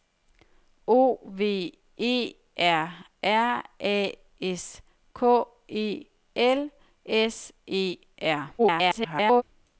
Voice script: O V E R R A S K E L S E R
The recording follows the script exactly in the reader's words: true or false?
false